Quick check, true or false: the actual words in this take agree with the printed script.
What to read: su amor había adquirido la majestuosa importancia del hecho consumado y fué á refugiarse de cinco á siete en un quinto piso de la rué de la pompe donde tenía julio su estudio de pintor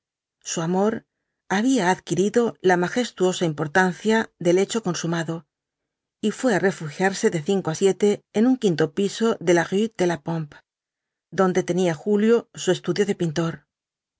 true